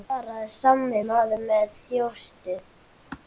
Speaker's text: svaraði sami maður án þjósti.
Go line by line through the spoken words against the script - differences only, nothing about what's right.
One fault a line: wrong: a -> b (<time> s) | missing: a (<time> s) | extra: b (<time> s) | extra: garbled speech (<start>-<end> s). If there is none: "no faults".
wrong: án -> með (1.5 s)